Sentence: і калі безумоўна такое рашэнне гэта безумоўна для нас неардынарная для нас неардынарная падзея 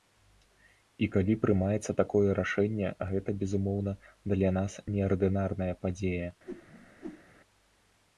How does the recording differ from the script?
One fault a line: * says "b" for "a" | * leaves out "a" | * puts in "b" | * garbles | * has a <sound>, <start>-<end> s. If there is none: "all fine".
* says "прымаецца" for "безумоўна"
* leaves out "для нас неардынарная"
* has a whoosh, 6.5-7.2 s